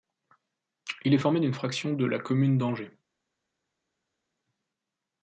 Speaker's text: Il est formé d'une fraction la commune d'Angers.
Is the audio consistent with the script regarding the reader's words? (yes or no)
no